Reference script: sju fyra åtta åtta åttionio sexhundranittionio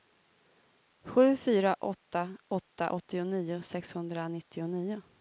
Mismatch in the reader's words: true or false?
false